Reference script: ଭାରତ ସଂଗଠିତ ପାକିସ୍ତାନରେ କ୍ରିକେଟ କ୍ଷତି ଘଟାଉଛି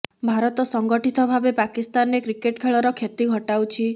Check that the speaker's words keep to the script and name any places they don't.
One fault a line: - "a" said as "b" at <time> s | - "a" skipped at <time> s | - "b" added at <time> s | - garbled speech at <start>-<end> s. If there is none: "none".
- "ଭାବେ" added at 1.3 s
- "ଖେଳର" added at 2.6 s